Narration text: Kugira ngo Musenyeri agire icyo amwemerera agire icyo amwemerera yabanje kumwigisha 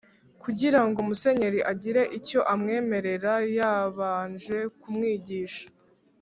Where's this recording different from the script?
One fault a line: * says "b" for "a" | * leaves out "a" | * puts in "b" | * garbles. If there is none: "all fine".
* leaves out "agire icyo amwemerera"